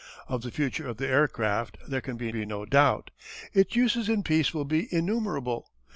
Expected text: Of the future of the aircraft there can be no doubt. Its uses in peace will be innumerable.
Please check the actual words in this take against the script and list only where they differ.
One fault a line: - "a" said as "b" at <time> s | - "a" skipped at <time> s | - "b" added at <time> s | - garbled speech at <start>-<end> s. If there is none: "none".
- "be" added at 2.3 s